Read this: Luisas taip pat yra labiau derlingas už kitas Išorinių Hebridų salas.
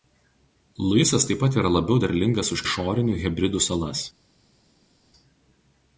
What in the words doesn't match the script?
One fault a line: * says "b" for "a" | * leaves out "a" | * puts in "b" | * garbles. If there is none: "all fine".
* leaves out "kitas"